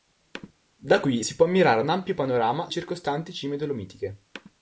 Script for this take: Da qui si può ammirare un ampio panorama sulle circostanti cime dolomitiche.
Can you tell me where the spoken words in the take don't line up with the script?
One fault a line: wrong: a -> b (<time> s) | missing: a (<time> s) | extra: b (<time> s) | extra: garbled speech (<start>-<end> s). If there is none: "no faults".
missing: sulle (2.7 s)